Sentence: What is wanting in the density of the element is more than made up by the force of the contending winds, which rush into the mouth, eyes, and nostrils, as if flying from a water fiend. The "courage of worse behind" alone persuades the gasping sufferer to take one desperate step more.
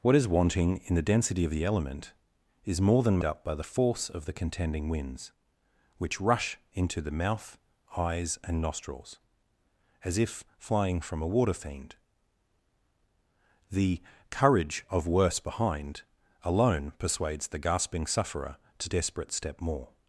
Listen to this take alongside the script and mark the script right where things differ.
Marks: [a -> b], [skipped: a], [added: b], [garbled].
What is wanting in the density of the element is more than [skipped: made] up by the force of the contending winds, which rush into the mouth, eyes, and nostrils, as if flying from a water fiend. The "courage of worse behind" alone persuades the gasping sufferer to [skipped: take one] desperate step more.